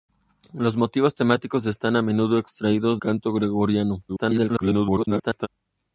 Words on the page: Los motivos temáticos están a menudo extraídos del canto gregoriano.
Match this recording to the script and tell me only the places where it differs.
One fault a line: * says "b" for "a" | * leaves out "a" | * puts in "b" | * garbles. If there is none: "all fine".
* leaves out "del"
* garbles